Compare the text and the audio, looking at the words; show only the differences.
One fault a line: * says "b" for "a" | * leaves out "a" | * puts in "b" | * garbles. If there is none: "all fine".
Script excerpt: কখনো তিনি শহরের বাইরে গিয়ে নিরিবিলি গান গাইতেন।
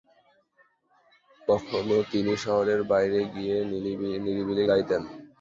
* leaves out "গান"